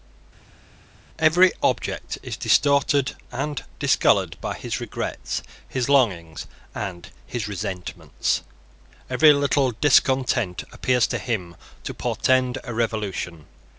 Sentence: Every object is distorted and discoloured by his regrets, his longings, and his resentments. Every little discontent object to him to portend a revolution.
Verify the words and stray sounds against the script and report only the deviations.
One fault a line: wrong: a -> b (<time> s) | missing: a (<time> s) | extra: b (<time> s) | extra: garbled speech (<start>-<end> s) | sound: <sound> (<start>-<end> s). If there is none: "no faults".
wrong: object -> appears (10.7 s)